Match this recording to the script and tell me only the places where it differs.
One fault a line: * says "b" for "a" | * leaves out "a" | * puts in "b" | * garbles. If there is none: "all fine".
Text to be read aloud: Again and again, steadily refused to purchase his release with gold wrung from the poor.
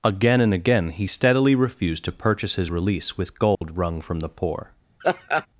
* puts in "he"